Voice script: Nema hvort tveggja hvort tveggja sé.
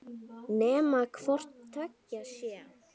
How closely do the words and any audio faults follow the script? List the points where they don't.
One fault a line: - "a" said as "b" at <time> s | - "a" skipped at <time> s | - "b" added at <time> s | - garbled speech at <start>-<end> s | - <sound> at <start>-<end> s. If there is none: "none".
- "hvort tveggja" skipped at 2.2 s